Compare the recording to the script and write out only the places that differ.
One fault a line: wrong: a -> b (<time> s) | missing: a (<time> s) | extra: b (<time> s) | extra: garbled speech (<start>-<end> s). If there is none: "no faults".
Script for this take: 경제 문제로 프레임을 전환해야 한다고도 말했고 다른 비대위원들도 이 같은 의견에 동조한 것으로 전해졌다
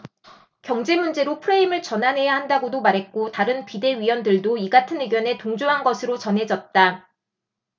no faults